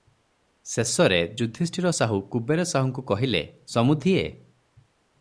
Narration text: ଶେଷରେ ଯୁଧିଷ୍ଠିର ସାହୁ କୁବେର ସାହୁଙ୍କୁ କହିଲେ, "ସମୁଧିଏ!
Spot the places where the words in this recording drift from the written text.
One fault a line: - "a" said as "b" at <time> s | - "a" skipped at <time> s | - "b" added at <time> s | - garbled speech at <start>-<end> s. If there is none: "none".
none